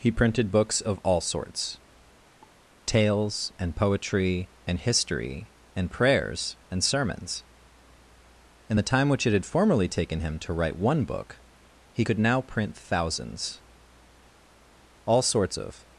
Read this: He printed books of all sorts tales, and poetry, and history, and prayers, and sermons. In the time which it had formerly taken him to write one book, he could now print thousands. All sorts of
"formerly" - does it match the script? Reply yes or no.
yes